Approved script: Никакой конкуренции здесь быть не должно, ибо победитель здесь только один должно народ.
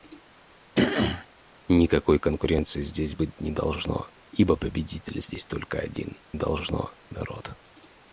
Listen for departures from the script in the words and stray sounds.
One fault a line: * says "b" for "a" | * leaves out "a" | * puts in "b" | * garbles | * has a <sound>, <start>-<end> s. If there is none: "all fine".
* has a throat clearing, 0.7-1.3 s